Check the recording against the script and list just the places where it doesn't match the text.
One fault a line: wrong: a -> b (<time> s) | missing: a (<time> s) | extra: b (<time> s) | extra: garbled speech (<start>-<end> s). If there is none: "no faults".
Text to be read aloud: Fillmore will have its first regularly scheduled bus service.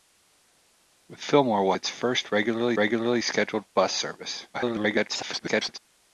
missing: have (1.7 s)
extra: regularly (2.8 s)
extra: garbled speech (4.5-5.8 s)